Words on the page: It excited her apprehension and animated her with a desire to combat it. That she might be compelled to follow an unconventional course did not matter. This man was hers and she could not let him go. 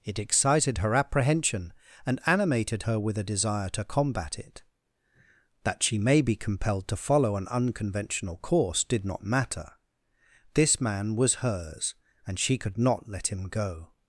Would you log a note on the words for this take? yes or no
yes